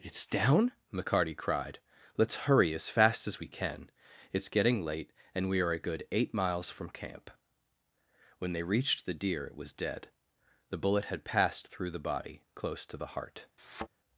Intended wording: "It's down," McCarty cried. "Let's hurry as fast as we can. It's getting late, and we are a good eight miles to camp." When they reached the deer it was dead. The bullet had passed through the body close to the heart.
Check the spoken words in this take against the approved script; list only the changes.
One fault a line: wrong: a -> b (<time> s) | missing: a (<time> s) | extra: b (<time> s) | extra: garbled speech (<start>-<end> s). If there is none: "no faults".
wrong: to -> from (6.7 s)